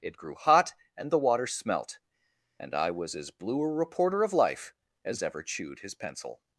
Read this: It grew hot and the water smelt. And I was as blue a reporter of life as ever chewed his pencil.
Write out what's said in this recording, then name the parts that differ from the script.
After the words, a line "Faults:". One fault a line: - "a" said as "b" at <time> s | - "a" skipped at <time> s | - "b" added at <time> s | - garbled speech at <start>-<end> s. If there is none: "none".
It grew hot and the water smelt. And I was as blue a reporter of life as ever chewed his pencil.
Faults:
none